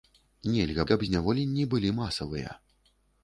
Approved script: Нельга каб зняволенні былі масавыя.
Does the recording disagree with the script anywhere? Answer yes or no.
no